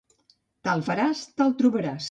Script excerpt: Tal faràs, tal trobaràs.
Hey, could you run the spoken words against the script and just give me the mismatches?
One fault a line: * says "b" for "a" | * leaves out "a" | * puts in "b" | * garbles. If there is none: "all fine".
all fine